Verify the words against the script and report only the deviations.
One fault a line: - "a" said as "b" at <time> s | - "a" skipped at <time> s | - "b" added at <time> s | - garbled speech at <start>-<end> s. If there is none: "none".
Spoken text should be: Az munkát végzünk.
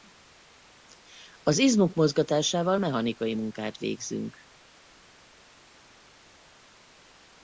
- "izmok mozgatásával mechanikai" added at 1.6 s